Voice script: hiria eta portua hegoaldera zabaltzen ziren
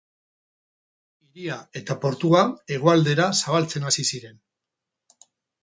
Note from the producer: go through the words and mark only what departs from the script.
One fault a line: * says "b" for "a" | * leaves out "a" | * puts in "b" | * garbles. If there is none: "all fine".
* puts in "hasi"